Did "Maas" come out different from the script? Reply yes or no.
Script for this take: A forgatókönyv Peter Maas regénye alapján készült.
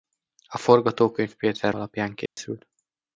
yes